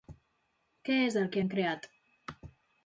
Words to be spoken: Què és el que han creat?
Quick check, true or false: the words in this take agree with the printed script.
true